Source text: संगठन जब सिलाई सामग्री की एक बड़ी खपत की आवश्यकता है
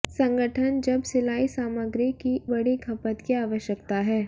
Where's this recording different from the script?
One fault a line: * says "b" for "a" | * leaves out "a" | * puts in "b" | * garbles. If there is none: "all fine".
* leaves out "एक"